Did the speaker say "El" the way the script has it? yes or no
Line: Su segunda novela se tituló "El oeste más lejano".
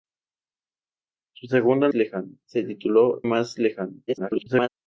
no